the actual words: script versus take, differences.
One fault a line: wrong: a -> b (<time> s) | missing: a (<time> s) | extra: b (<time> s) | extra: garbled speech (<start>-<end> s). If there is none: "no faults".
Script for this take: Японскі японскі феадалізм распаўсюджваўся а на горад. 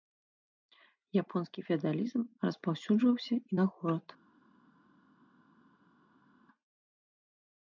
missing: японскі (1.6 s)
wrong: а -> і (3.4 s)